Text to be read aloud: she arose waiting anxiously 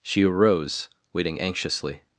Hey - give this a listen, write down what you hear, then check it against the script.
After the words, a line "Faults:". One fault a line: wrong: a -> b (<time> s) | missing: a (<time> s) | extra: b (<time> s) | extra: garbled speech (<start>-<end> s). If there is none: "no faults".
she arose waiting anxiously
Faults:
no faults